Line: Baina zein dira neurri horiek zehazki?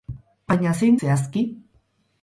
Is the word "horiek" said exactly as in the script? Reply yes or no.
no